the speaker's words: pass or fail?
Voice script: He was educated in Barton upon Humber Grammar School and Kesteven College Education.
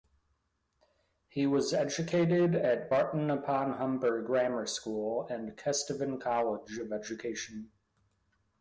fail